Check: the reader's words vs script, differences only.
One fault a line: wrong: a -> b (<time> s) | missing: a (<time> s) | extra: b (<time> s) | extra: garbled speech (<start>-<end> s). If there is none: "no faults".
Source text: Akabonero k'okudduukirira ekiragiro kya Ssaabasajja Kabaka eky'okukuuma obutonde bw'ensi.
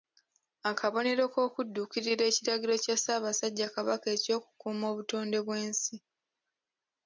no faults